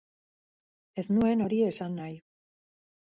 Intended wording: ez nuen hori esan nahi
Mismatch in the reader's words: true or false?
false